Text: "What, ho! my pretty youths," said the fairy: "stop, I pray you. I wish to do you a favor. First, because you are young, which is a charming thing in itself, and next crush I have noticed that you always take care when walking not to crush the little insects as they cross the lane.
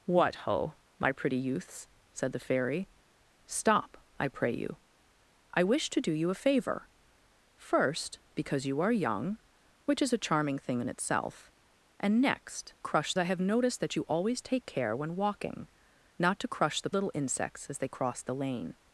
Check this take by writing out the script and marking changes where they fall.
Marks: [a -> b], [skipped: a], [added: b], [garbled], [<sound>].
"What, ho! my pretty youths," said the fairy: "stop, I pray you. I wish to do you a favor. First, because you are young, which is a charming thing in itself, and next crush I have noticed that you always take care when walking not to crush the little insects as they cross the lane.